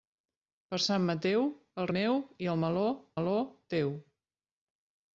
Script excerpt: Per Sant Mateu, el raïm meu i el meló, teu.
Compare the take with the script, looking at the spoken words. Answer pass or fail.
fail